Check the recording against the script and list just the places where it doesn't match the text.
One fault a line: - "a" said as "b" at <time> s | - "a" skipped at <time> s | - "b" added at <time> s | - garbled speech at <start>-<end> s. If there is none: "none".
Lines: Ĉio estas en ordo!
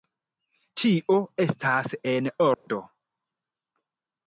none